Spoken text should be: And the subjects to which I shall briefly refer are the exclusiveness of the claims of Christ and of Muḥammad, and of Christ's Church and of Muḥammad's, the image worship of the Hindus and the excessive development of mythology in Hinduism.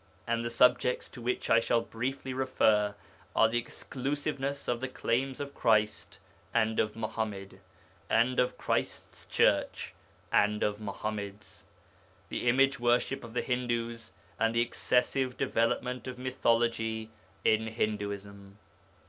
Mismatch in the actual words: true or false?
false